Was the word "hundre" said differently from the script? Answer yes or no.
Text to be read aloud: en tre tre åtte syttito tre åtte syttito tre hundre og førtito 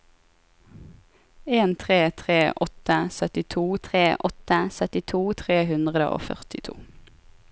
no